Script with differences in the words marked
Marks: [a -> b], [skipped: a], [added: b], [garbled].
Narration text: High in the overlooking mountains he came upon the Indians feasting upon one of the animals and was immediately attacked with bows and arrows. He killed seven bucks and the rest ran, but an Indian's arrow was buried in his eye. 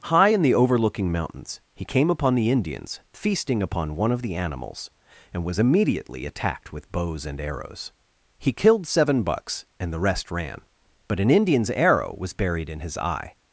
High in the overlooking mountains he came upon the Indians feasting upon one of the animals and was immediately attacked with bows and arrows. He killed seven bucks and the rest ran, but an Indian's arrow was buried in his eye.